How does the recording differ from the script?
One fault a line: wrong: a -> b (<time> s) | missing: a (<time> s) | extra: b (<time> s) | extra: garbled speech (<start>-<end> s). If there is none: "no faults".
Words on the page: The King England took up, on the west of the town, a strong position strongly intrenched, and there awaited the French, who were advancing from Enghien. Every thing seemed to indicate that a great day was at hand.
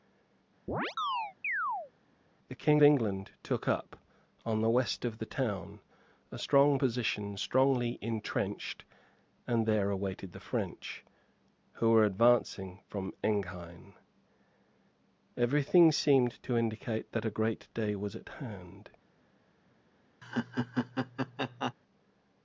no faults